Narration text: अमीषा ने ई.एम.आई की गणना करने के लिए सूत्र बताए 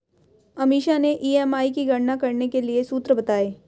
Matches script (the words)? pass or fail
pass